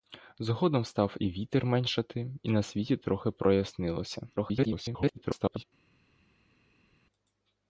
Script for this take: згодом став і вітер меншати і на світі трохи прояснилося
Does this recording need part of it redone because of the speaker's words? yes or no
yes